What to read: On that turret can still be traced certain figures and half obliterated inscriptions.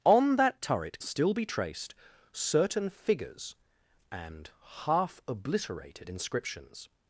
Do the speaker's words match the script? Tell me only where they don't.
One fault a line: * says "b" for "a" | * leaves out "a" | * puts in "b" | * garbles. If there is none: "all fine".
* leaves out "can"